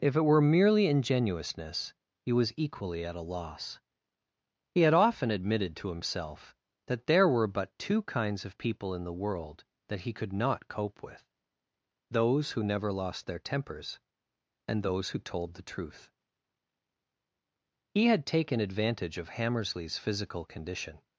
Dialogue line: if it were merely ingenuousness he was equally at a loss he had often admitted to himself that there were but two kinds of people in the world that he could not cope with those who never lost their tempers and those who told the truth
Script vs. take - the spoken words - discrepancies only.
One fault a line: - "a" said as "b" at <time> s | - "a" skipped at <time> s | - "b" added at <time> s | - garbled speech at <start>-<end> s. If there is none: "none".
- "he had taken advantage of hammersley's physical condition" added at 17.9 s